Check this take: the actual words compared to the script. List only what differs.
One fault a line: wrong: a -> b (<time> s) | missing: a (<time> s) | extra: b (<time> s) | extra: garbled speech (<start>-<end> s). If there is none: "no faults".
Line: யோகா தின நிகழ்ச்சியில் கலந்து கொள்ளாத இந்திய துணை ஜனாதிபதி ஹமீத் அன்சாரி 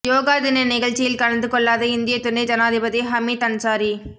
no faults